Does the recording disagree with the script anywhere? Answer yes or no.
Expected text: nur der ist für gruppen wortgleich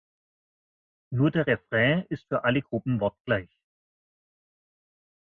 yes